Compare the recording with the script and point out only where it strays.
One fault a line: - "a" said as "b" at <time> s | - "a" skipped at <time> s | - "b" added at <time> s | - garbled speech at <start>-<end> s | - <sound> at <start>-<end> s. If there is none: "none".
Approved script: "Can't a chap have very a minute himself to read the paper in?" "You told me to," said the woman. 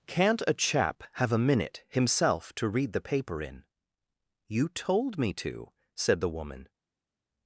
- "very" skipped at 1.3 s